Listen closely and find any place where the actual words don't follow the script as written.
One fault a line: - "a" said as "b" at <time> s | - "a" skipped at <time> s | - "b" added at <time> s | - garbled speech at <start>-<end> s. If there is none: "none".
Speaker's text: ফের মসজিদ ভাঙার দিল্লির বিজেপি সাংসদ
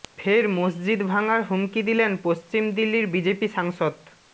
- "হুমকি দিলেন পশ্চিম" added at 1.4 s